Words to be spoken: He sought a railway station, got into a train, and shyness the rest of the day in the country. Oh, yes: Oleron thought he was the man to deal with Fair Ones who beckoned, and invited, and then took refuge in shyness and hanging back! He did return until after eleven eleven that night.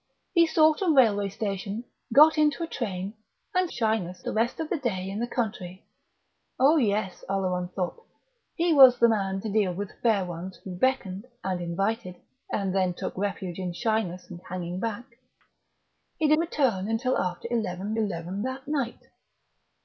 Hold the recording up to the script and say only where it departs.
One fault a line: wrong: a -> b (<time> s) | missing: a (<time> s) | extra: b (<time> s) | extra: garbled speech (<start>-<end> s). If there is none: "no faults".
no faults